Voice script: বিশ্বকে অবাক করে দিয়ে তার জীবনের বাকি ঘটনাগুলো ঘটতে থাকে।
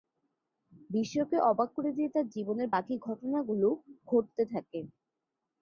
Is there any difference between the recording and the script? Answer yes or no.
no